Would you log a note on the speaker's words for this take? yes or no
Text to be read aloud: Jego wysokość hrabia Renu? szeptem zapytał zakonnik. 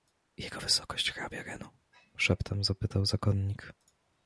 no